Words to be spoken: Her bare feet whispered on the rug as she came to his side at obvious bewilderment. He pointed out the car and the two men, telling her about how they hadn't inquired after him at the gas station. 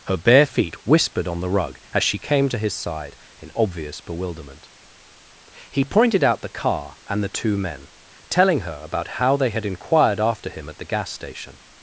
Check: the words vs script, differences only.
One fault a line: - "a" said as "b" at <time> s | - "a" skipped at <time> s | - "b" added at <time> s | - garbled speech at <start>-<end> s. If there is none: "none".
- "at" said as "in" at 3.4 s
- "hadn't" said as "had" at 9.5 s